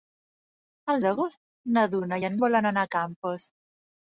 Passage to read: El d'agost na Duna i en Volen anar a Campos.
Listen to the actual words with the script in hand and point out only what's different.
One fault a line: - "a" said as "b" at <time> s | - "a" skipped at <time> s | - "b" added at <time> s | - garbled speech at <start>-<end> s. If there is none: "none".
none